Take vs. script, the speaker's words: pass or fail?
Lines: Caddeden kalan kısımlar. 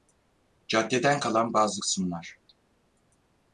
fail